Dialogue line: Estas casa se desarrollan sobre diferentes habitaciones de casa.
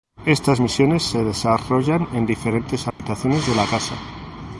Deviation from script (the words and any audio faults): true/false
true